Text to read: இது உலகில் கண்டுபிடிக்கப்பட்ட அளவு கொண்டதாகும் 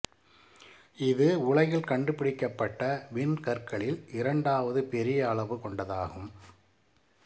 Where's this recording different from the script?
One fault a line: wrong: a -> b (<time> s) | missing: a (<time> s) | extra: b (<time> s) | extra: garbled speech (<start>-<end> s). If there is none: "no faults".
extra: விண்கற்களில் இரண்டாவது பெரிய (3.1 s)